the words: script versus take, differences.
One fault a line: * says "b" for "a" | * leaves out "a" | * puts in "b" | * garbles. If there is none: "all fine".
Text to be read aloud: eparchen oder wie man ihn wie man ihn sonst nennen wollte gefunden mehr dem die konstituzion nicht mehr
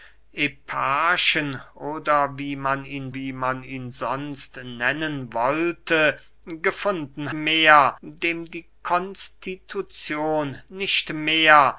all fine